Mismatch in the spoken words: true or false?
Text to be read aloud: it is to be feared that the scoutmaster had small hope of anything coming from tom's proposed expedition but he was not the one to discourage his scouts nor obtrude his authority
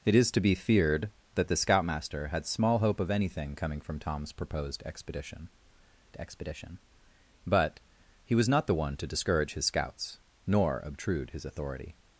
true